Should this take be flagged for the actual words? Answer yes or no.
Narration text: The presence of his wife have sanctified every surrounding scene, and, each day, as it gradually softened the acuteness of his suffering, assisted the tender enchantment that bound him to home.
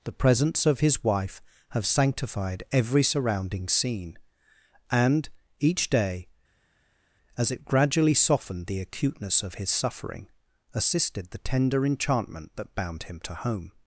no